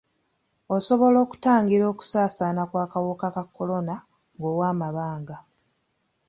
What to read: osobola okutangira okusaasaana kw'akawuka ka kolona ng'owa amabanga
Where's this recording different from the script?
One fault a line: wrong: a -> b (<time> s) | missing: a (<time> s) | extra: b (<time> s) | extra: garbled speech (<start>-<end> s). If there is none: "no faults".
no faults